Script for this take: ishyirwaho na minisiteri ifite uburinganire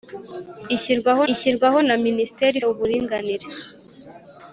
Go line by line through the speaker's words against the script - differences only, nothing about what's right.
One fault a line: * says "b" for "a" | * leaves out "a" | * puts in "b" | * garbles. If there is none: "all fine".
* puts in "ishyirwaho"
* leaves out "ifite"